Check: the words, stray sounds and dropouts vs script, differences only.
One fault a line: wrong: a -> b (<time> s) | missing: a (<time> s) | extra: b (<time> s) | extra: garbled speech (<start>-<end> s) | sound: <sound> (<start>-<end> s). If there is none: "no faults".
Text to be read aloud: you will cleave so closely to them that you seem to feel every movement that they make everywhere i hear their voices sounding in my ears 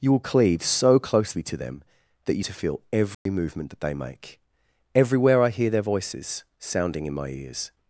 missing: seem (2.4 s)
sound: dropout (3.1-3.3 s)